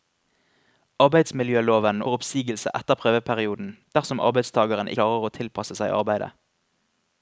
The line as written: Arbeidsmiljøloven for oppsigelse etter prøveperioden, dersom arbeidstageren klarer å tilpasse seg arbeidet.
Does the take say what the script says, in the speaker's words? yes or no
yes